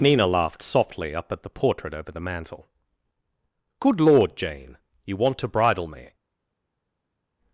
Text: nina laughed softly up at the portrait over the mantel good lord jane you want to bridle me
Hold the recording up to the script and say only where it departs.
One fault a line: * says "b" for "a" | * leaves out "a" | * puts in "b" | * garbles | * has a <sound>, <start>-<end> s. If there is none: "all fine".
all fine